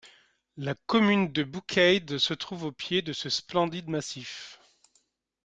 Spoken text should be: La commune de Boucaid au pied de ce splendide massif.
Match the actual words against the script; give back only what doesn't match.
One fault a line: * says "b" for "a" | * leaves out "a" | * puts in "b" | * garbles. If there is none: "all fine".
* puts in "se trouve"